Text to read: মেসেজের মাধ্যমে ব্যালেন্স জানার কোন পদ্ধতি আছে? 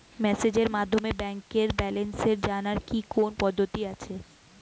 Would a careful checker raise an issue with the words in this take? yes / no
yes